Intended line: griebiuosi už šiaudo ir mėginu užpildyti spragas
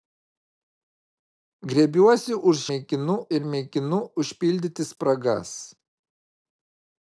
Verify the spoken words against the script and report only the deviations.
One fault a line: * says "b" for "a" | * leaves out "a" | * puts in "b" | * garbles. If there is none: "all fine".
* says "mėginu" for "šiaudo"